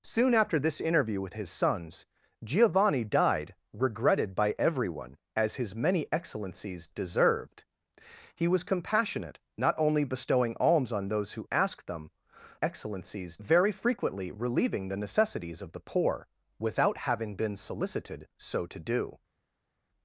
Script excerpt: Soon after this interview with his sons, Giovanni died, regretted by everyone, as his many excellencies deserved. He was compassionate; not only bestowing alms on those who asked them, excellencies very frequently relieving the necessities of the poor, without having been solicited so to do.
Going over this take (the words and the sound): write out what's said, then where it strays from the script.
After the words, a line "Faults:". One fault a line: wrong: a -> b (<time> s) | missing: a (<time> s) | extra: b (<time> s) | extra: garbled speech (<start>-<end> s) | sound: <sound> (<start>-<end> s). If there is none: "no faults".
Soon after this interview with his sons, Giovanni died, regretted by everyone, as his many excellencies deserved. He was compassionate; not only bestowing alms on those who asked them, excellencies very frequently relieving the necessities of the poor, without having been solicited so to do.
Faults:
no faults